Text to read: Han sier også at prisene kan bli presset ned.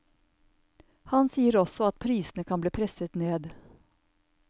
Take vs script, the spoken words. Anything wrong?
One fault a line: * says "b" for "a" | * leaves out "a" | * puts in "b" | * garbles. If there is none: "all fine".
all fine